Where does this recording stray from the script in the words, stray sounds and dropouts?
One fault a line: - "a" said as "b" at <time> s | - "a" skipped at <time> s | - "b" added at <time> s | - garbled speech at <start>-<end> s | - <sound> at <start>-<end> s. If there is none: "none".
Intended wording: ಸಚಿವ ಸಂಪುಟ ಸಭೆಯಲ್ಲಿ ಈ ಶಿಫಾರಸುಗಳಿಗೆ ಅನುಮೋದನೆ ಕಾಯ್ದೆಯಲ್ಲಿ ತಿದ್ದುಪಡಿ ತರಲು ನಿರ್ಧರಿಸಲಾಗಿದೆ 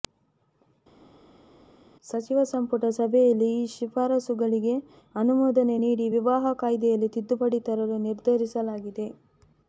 - "ನೀಡಿ ವಿವಾಹ" added at 5.8 s